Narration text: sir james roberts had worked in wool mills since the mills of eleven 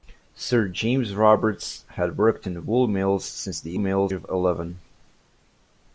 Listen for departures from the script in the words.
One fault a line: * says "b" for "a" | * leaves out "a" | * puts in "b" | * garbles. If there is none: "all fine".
all fine